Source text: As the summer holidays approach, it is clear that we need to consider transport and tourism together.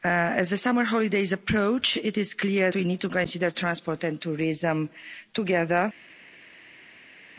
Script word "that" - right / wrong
wrong